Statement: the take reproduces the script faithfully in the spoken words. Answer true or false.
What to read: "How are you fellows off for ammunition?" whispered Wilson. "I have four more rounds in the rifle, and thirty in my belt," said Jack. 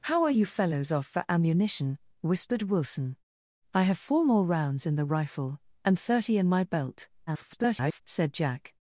false